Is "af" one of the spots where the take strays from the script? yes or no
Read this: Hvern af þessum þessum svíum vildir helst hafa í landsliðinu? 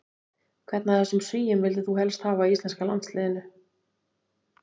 no